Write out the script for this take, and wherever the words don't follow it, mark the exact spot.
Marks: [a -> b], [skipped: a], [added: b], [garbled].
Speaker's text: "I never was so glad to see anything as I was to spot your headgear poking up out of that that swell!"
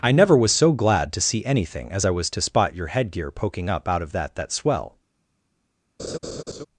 "I never was so glad to see anything as I was to spot your headgear poking up out of that that swell!"